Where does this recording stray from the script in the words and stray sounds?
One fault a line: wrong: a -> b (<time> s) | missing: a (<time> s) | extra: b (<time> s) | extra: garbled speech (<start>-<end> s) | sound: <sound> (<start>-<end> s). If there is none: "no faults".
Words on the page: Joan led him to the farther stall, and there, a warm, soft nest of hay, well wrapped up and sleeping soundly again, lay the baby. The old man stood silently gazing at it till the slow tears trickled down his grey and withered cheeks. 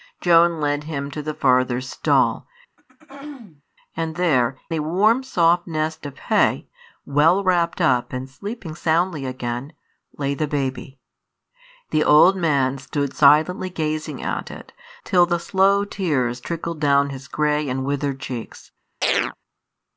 sound: throat clearing (2.8-3.6 s)
sound: chirp (19.0-19.4 s)